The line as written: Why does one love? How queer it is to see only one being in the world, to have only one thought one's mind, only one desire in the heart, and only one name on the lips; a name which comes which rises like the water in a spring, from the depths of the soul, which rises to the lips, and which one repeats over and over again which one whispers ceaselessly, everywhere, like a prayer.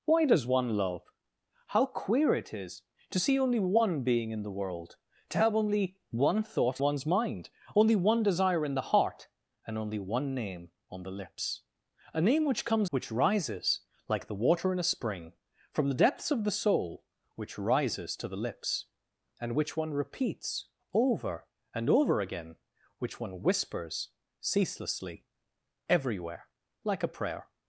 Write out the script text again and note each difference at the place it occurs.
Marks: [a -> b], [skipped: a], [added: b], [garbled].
Why does one love? How queer it is to see only one being in the world, to have only one thought one's mind, only one desire in the heart, and only one name on the lips; a name which comes which rises like the water in a spring, from the depths of the soul, which rises to the lips, and which one repeats over and over again which one whispers ceaselessly, everywhere, like a prayer.